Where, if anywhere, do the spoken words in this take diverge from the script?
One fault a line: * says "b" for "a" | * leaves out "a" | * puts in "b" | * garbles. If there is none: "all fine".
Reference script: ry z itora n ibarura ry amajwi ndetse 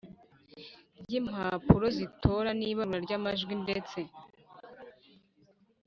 * puts in "impapuro"